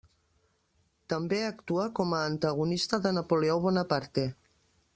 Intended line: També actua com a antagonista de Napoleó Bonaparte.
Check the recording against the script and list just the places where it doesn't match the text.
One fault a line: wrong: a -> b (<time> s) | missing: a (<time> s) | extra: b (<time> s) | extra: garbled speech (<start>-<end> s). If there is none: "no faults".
no faults